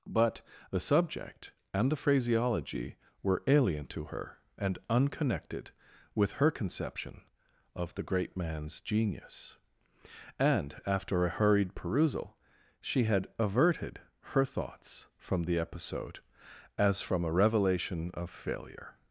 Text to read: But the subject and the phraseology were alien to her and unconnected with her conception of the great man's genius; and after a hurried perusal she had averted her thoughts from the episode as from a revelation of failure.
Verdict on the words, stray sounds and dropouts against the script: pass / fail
pass